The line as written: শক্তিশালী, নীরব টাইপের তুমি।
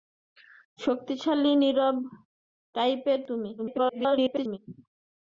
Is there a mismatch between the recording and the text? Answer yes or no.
yes